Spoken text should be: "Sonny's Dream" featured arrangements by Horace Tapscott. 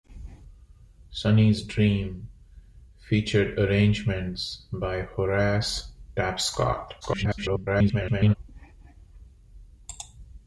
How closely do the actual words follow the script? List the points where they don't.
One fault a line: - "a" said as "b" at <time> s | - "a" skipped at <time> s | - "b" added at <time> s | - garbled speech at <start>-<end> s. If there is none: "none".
- garbled speech at 7.0-8.3 s